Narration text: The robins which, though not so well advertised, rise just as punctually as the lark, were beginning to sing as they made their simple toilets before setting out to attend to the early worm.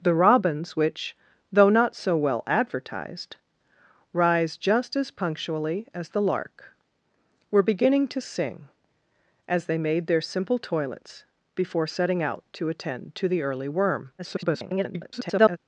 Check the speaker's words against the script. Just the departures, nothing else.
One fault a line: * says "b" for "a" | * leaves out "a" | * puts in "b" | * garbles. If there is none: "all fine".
* garbles